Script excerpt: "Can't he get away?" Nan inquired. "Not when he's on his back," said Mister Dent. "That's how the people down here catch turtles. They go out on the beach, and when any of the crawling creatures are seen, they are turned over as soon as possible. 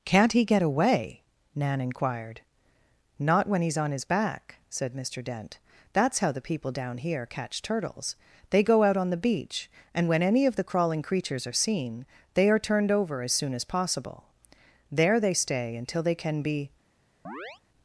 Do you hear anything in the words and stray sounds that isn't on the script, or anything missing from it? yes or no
yes